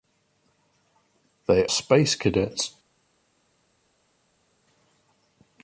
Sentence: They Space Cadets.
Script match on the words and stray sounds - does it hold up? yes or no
yes